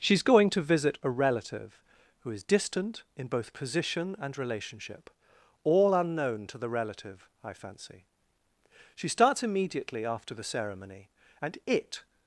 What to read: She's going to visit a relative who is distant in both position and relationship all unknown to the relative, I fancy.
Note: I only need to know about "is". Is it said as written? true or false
true